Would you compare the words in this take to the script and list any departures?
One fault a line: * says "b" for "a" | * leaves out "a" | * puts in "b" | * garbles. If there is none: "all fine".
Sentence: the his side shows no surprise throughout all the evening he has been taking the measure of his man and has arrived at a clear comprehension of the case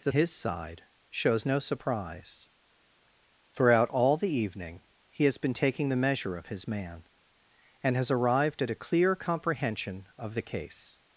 all fine